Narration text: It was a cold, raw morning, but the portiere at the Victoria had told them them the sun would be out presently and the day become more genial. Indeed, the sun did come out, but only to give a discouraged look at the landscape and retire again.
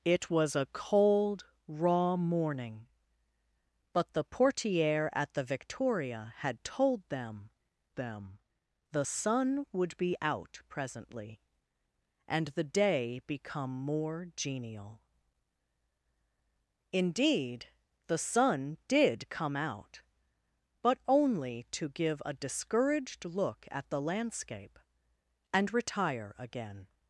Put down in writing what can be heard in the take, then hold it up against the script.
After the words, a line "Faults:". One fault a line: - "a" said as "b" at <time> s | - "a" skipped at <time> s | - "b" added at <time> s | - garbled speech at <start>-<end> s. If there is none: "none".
It was a cold, raw morning, but the portiere at the Victoria had told them them the sun would be out presently and the day become more genial. Indeed, the sun did come out, but only to give a discouraged look at the landscape and retire again.
Faults:
none